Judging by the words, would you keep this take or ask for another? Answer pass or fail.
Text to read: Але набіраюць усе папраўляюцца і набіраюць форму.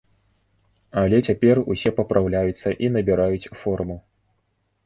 fail